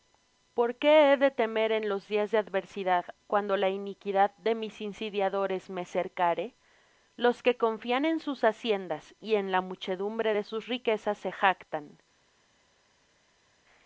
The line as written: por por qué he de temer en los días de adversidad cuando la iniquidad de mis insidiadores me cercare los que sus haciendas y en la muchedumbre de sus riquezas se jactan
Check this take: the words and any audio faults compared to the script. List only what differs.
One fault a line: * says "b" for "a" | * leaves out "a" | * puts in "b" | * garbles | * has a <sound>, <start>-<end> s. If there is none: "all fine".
* leaves out "por"
* puts in "confían en"